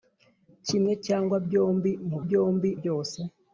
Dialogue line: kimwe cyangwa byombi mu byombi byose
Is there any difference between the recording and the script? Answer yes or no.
no